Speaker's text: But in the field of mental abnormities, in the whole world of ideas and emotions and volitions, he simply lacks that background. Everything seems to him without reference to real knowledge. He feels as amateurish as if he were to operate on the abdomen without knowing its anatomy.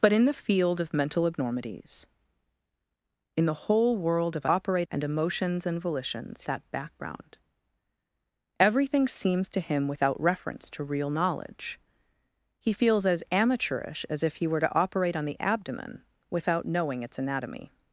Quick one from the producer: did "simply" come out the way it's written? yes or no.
no